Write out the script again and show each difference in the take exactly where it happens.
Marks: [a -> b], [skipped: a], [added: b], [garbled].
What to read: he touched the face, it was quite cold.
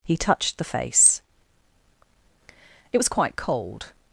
he touched the face, it was quite cold.